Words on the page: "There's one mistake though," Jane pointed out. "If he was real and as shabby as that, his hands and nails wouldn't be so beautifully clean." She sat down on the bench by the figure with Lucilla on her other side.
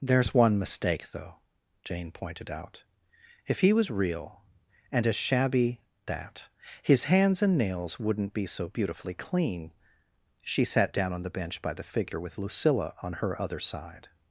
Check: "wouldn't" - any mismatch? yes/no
no